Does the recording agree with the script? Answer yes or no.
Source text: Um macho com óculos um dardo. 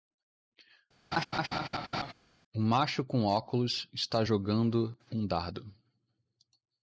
no